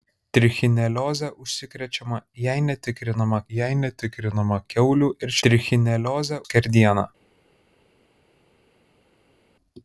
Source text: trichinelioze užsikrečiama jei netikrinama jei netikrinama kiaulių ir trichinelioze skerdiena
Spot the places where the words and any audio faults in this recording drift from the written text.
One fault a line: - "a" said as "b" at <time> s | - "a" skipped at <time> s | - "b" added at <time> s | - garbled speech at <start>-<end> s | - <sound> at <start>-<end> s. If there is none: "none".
none